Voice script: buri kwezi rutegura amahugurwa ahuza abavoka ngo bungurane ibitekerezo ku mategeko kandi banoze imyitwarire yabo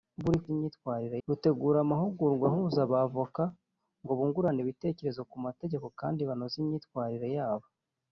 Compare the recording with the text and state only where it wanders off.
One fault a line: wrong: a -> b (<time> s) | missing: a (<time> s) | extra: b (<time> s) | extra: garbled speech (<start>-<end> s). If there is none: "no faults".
wrong: kwezi -> imyitwarire (0.5 s)